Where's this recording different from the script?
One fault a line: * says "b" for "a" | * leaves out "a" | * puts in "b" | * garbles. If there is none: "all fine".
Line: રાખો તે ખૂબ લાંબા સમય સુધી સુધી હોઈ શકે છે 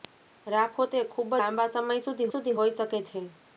all fine